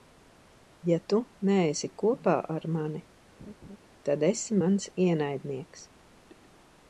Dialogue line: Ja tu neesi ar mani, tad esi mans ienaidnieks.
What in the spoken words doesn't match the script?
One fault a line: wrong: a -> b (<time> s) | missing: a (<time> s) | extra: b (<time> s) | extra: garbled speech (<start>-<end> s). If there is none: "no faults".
extra: kopā (2.0 s)